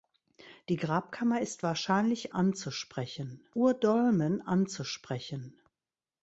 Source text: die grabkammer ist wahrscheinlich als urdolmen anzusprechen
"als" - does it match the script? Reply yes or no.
no